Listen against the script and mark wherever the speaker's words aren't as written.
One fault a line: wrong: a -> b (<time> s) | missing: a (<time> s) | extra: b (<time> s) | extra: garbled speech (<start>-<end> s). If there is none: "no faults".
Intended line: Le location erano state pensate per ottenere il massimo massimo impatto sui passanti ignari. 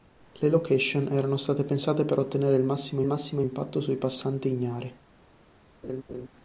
no faults